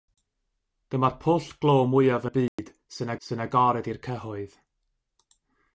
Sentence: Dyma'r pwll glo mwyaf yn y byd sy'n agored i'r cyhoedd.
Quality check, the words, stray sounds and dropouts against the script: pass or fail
fail